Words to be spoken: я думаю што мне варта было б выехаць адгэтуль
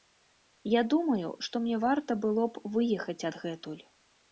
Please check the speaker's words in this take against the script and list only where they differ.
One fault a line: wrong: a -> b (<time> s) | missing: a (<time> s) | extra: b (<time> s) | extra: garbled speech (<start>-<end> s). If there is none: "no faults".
no faults